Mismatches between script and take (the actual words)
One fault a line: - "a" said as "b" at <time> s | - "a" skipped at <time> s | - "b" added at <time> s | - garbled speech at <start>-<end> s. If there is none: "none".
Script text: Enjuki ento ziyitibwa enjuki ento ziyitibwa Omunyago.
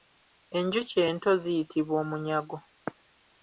- "enjuki ento ziyitibwa" skipped at 1.9 s